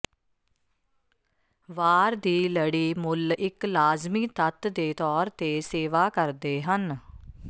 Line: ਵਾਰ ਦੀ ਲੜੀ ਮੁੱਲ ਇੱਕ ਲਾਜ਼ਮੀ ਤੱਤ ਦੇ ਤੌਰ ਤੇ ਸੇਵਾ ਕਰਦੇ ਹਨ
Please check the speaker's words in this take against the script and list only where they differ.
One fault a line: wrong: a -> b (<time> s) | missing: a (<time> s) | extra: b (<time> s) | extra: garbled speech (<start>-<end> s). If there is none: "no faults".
no faults